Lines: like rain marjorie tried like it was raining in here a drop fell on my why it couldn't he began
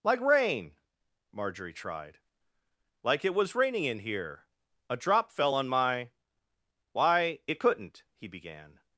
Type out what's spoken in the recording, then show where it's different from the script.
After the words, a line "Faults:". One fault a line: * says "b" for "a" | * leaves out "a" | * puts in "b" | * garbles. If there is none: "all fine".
like rain marjorie tried like it was raining in here a drop fell on my why it couldn't he began
Faults:
all fine